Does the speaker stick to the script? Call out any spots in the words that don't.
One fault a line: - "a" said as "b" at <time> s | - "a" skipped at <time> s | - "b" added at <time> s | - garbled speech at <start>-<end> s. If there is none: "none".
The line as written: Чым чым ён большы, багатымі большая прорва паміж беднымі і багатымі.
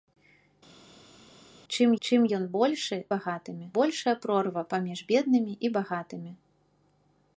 none